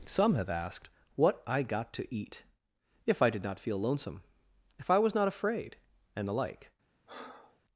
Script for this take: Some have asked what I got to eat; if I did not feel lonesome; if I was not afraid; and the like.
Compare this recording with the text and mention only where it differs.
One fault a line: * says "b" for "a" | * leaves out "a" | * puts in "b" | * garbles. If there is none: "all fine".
all fine